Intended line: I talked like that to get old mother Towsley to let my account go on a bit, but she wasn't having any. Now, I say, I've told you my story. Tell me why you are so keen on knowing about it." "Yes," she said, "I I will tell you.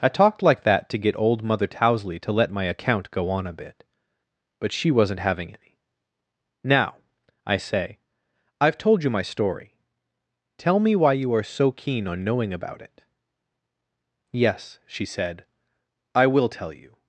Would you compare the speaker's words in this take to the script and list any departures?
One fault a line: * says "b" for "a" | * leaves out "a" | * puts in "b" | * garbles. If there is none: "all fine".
* leaves out "I"